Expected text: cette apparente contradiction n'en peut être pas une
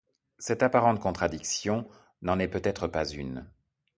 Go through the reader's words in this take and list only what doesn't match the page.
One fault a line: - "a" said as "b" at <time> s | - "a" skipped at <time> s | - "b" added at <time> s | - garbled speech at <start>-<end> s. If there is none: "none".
- "est" added at 2.4 s